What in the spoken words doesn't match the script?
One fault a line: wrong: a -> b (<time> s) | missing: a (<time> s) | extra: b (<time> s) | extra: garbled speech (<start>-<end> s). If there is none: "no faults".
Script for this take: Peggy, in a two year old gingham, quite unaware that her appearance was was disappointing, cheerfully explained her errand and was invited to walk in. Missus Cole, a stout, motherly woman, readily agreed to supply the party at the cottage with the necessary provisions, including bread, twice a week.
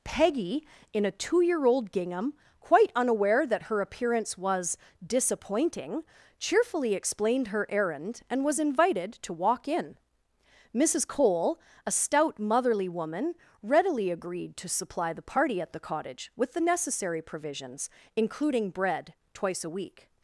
missing: was (4.8 s)